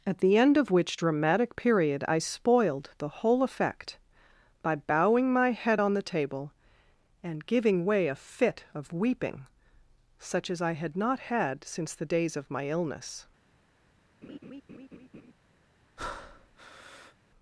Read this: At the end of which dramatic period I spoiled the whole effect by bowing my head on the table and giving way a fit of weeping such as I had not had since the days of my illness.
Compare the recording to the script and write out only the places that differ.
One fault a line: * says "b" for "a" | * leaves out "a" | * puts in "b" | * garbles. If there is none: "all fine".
all fine